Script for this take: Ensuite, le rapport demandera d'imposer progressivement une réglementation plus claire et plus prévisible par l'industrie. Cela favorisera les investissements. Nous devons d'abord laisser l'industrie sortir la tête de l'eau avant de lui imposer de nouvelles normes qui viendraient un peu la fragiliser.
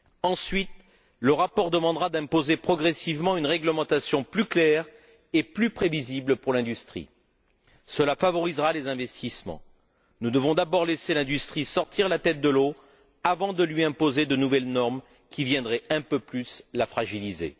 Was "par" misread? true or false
true